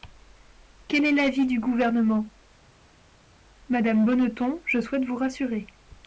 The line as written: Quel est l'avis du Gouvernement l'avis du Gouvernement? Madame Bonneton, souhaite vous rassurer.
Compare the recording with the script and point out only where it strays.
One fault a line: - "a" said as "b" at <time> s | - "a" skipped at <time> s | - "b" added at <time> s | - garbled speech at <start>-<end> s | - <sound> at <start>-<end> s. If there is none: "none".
- "l'avis du Gouvernement" skipped at 2.3 s
- "je" added at 4.7 s